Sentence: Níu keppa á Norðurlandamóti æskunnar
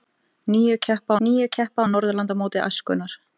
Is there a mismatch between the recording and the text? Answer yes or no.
yes